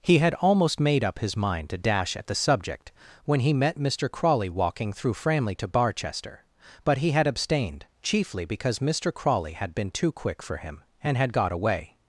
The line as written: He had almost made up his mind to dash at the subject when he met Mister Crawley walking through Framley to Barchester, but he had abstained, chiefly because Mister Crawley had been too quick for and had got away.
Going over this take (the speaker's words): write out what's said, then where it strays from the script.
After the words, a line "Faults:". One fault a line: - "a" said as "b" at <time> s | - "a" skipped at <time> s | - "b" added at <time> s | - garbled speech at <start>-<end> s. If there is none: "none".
He had almost made up his mind to dash at the subject when he met Mister Crawley walking through Framley to Barchester, but he had abstained, chiefly because Mister Crawley had been too quick for him, and had got away.
Faults:
- "him" added at 10.6 s